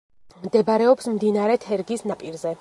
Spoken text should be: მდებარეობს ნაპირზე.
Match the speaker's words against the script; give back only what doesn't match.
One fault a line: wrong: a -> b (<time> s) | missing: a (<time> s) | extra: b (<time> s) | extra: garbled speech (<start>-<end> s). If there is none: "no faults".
extra: მდინარე თერგის (1.2 s)